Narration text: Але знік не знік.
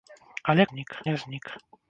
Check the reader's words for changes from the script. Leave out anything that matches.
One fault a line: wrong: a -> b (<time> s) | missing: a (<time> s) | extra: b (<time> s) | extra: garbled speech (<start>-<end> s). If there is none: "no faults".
no faults